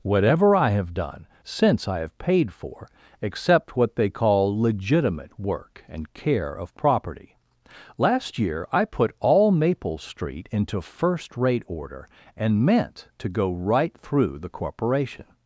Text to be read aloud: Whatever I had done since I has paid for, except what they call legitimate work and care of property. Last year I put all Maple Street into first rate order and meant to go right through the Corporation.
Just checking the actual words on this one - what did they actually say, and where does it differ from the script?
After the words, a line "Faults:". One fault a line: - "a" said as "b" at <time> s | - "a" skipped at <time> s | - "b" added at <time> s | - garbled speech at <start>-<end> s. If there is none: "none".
Whatever I have done since I have paid for, except what they call legitimate work and care of property. Last year I put all Maple Street into first rate order and meant to go right through the Corporation.
Faults:
- "had" said as "have" at 0.7 s
- "has" said as "have" at 2.0 s